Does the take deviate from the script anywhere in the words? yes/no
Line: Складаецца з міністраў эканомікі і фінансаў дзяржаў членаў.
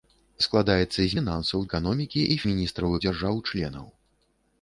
yes